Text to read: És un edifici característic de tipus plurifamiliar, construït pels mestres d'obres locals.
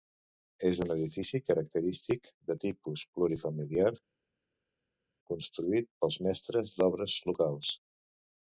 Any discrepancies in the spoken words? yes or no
no